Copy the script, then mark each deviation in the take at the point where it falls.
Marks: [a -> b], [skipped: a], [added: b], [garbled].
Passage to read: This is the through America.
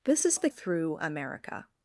This is the through America.